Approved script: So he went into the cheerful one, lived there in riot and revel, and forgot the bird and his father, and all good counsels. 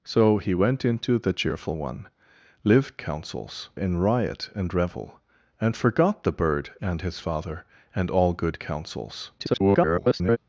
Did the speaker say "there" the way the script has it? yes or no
no